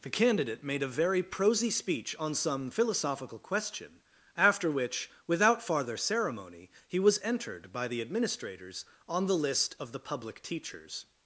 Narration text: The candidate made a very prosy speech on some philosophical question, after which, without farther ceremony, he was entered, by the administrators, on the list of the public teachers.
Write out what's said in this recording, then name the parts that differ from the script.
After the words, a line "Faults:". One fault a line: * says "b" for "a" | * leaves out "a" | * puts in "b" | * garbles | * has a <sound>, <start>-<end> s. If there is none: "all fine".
The candidate made a very prosy speech on some philosophical question, after which, without farther ceremony, he was entered, by the administrators, on the list of the public teachers.
Faults:
all fine